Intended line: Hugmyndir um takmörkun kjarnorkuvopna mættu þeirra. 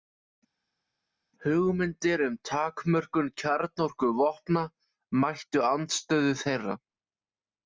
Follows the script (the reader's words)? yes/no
no